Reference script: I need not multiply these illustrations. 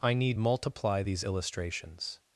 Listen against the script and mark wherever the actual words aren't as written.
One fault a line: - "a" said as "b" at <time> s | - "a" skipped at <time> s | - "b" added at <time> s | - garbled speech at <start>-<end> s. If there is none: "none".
- "not" skipped at 0.4 s